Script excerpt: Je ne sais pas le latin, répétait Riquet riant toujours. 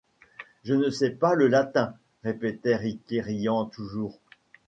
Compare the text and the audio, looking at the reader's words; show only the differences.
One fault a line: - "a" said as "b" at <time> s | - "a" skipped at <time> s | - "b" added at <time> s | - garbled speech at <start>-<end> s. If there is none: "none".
none